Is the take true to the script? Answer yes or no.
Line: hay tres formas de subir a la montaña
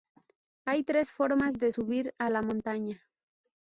yes